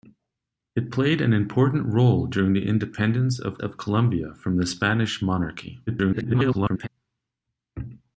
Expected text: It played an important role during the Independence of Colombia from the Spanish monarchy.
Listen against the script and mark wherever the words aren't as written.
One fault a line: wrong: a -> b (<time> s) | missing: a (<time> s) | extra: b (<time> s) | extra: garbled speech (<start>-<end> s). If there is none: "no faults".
extra: of (3.6 s)
extra: garbled speech (5.9-6.9 s)